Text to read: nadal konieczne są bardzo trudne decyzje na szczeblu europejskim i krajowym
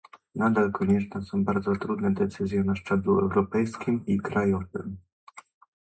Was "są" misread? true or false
false